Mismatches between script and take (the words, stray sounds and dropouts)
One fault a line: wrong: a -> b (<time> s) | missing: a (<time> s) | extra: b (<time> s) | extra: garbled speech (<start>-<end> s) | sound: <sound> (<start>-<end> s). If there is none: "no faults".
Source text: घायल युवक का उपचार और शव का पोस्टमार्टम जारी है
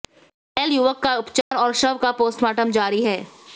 sound: dropout (1.4-1.5 s)